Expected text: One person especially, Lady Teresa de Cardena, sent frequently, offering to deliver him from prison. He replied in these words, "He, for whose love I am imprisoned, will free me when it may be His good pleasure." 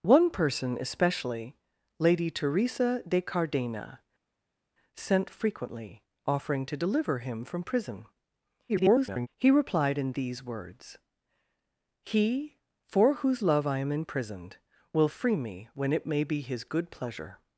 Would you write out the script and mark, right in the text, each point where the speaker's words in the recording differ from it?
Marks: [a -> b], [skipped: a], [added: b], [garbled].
One person especially, Lady Teresa de Cardena, sent frequently, offering to deliver him from prison. [garbled] He replied in these words, "He, for whose love I am imprisoned, will free me when it may be His good pleasure."